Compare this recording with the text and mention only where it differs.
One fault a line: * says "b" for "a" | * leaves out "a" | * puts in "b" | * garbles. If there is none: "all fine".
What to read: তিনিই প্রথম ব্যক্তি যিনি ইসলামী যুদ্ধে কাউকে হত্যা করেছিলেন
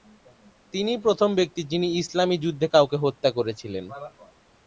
all fine